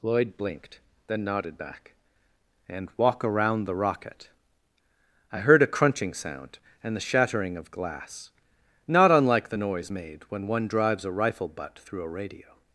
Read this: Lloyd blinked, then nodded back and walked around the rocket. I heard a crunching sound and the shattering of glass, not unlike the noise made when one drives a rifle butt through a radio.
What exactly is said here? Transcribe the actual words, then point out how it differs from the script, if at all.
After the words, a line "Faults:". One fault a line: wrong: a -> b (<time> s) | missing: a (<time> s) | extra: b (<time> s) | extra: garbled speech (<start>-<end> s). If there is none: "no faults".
Lloyd blinked, then nodded back and walk around the rocket. I heard a crunching sound and the shattering of glass, not unlike the noise made when one drives a rifle butt through a radio.
Faults:
wrong: walked -> walk (3.0 s)